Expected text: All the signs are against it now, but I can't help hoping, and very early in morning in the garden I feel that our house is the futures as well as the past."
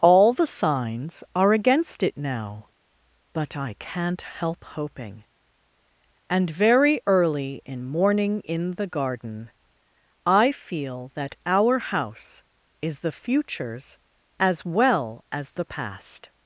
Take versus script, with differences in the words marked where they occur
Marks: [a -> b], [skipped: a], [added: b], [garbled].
All the signs are against it now, but I can't help hoping, and very early in morning in the garden I feel that our house is the futures as well as the past."